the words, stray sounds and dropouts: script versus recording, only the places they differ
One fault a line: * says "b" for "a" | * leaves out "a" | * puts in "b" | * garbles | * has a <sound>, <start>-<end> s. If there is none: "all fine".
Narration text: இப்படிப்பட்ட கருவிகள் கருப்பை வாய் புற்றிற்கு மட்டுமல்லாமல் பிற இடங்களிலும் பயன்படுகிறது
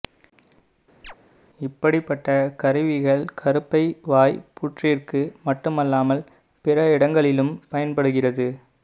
* has a chirp, 1.0-1.2 s